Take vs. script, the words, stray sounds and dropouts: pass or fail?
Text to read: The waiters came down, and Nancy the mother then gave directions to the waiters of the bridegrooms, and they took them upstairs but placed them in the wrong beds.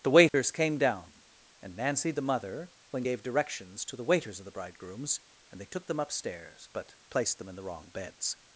fail